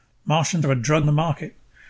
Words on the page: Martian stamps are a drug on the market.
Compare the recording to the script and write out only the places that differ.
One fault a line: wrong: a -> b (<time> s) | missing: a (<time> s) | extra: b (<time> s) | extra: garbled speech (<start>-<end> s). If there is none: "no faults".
missing: stamps (0.6 s)
missing: on (1.0 s)